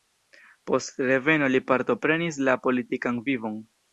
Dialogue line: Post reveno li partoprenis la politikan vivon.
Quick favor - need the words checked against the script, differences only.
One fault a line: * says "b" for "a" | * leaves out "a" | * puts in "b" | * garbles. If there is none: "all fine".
all fine